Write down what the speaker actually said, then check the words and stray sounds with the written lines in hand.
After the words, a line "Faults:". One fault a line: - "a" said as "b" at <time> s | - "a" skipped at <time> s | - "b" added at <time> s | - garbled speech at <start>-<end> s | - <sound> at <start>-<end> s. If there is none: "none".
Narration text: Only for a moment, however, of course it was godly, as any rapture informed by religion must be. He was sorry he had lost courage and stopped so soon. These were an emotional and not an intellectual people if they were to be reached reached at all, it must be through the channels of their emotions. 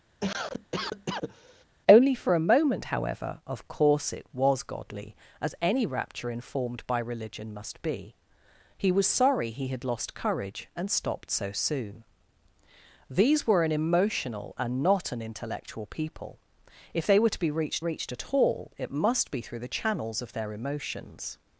Only for a moment, however, of course it was godly, as any rapture informed by religion must be. He was sorry he had lost courage and stopped so soon. These were an emotional and not an intellectual people if they were to be reached reached at all, it must be through the channels of their emotions.
Faults:
- cough at 0.2-1.6 s